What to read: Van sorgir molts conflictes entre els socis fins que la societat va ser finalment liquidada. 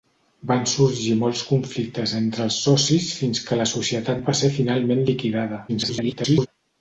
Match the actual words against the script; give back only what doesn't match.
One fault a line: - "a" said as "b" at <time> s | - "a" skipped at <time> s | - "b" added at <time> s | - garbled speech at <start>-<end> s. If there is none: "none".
- garbled speech at 5.7-6.5 s